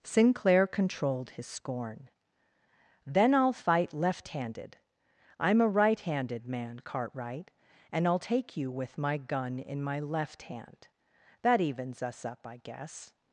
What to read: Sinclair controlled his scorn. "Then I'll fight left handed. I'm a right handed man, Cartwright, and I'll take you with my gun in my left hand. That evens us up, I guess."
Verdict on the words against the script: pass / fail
pass